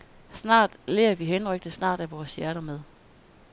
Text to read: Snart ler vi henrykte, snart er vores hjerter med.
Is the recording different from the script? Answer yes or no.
no